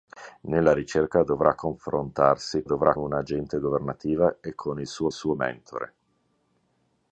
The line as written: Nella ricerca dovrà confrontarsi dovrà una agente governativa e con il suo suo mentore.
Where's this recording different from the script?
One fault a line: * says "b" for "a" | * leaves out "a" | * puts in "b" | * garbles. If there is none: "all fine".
all fine